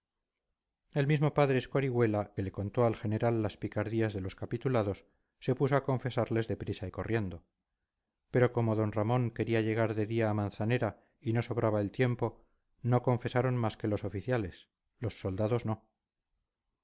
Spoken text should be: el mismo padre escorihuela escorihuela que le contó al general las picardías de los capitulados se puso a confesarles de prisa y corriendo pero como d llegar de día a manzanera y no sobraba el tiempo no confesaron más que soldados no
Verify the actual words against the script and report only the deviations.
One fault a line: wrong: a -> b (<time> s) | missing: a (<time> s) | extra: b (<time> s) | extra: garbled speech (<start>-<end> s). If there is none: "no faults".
missing: escorihuela (2.3 s)
extra: ramón quería (8.9 s)
extra: los oficiales los (13.9 s)